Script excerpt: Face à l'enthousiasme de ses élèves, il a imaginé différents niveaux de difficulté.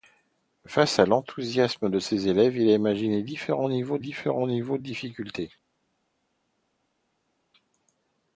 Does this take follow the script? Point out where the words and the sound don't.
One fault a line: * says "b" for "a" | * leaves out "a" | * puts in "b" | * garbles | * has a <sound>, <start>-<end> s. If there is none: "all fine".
* puts in "différents niveaux"